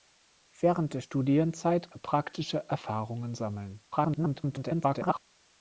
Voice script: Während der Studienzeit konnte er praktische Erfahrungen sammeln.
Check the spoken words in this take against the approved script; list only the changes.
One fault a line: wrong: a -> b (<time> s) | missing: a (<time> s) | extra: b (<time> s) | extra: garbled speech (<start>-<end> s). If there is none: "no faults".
missing: konnte (1.9 s)
extra: garbled speech (3.9-5.2 s)